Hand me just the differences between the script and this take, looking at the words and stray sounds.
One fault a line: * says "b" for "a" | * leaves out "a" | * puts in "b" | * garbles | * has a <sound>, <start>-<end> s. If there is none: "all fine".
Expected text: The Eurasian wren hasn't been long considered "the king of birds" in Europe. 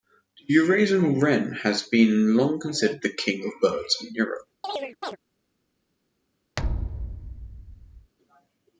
* says "has" for "hasn't"
* has a chirp, 4.6-5.2 s
* has a thud, 6.6-8.1 s